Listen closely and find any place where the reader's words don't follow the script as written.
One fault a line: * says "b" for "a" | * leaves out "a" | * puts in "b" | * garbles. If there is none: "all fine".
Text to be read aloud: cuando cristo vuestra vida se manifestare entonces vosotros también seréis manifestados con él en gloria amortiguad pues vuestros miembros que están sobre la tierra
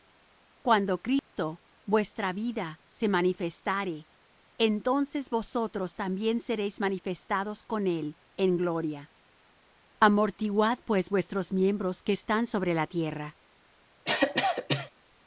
all fine